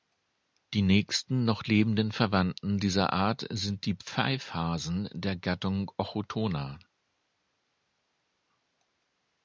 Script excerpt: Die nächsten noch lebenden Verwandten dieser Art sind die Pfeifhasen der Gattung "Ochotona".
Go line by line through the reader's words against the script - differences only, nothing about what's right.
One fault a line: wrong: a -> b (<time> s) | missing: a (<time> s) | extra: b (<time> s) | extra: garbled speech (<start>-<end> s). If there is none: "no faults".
no faults